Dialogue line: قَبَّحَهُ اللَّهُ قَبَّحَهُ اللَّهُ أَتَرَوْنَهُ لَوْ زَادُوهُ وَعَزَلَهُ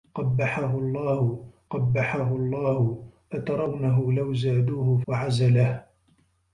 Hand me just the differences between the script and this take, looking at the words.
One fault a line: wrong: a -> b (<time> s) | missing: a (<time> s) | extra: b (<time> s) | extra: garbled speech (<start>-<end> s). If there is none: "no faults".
no faults